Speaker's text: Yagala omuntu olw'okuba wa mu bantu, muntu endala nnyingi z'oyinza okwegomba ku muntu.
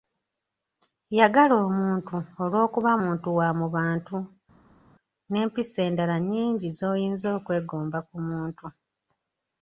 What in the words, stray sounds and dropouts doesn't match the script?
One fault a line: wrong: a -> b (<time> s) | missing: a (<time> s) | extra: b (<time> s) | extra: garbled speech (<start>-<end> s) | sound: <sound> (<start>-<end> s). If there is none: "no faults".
extra: muntu (3.0 s)
wrong: muntu -> n'empisa (5.3 s)